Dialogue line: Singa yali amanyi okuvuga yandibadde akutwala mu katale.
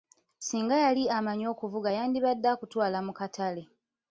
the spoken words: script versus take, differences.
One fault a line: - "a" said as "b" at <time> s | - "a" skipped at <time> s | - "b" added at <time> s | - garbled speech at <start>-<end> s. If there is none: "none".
none